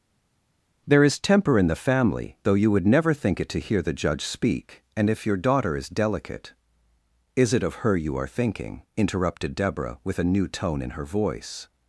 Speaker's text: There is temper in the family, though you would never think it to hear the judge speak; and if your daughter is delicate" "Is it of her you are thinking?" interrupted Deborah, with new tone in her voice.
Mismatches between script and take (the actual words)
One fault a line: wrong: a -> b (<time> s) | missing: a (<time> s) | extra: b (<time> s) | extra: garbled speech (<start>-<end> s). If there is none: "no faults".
extra: a (10.2 s)